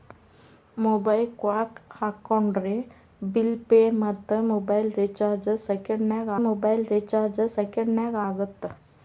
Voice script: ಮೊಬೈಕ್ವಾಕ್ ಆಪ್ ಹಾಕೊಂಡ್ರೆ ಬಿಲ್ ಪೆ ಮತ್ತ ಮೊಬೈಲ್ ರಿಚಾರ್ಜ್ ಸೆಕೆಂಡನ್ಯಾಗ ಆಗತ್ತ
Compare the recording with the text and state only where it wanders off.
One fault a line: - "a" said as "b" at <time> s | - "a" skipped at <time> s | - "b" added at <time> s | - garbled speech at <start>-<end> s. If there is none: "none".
- "ಆಪ್" skipped at 1.8 s
- "ಮೊಬೈಲ್ ರಿಚಾರ್ಜ್ ಸೆಕೆಂಡನ್ಯಾಗ" added at 6.5 s